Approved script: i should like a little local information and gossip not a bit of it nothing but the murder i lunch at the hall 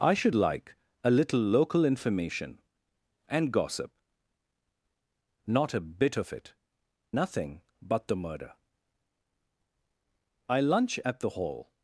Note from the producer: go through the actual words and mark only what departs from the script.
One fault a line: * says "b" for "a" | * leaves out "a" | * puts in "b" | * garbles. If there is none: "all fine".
all fine